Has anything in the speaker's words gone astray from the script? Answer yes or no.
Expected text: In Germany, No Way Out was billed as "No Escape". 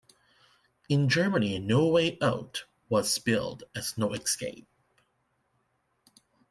no